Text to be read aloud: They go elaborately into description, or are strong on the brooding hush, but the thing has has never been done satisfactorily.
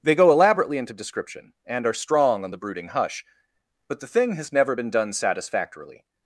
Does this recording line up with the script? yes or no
no